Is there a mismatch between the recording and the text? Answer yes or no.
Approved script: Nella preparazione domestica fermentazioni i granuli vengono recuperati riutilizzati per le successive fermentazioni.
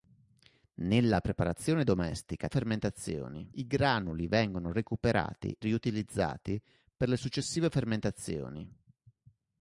no